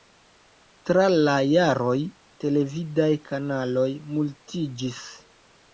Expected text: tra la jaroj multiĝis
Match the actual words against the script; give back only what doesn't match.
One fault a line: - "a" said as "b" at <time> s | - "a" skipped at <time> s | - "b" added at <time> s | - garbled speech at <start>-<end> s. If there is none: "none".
- "televidaj kanaloj" added at 2.4 s